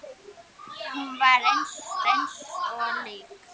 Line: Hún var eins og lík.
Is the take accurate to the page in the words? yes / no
no